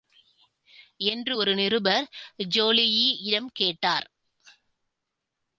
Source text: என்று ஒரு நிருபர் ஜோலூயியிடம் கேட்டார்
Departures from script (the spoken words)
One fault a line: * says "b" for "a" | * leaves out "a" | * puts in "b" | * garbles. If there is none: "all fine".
all fine